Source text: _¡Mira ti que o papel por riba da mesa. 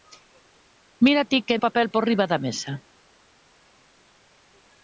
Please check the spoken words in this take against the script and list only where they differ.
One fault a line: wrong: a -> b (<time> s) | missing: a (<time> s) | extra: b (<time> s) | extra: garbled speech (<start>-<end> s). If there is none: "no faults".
no faults